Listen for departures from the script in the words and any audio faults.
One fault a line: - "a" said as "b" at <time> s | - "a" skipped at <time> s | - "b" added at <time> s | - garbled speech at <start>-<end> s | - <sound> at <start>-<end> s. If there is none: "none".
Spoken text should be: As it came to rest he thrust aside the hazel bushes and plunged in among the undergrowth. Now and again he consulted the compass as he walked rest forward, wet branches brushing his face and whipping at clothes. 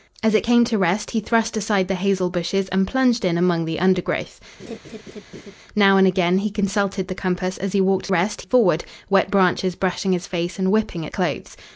- laugh at 4.6-5.6 s